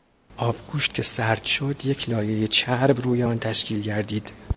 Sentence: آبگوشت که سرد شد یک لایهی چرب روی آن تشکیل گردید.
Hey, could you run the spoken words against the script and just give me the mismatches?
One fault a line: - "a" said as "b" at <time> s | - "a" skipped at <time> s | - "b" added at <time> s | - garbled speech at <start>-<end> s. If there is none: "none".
none